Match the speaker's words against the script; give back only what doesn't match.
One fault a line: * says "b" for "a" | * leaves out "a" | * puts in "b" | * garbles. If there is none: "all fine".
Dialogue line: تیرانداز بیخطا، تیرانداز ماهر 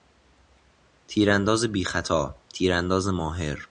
all fine